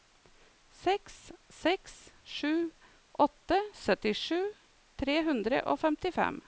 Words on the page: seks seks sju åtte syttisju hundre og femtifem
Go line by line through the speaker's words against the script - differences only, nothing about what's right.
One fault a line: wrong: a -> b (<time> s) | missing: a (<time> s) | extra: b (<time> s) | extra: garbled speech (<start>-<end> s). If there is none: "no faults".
extra: tre (5.0 s)